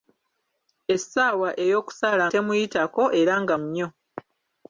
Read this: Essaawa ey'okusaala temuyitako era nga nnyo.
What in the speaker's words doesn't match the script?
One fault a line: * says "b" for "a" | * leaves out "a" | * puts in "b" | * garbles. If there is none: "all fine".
all fine